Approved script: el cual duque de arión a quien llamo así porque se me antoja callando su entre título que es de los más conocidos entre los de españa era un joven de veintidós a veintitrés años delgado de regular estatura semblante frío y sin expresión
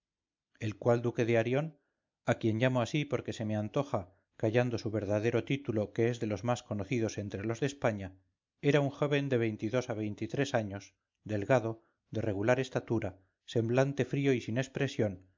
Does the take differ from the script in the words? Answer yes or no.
yes